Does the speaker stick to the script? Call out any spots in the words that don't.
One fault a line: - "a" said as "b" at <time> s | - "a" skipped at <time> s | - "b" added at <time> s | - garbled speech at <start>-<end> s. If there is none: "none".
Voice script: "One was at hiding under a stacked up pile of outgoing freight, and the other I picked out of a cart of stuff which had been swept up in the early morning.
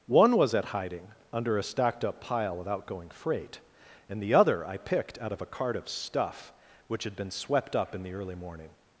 none